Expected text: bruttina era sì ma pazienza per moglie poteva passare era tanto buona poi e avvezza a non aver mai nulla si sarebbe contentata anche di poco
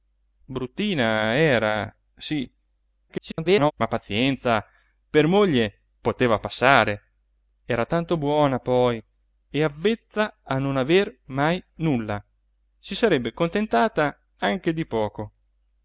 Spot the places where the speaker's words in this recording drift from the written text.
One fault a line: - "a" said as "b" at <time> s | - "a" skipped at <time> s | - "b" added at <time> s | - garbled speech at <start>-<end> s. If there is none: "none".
- garbled speech at 3.1-3.7 s